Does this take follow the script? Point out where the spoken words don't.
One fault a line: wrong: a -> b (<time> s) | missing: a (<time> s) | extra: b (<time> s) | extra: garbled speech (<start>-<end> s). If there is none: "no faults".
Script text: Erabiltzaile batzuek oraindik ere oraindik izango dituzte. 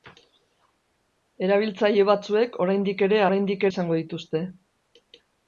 no faults